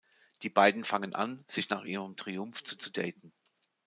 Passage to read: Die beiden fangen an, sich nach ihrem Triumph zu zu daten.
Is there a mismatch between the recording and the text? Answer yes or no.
no